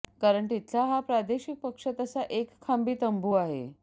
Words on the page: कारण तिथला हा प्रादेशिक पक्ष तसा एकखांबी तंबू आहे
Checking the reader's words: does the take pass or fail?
pass